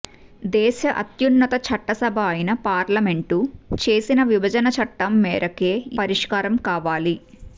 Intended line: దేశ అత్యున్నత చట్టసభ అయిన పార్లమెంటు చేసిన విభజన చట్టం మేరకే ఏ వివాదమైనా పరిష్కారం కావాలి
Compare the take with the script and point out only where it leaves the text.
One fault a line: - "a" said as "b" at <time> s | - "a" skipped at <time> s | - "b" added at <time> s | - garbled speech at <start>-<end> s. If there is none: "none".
- "ఏ వివాదమైనా" skipped at 5.7 s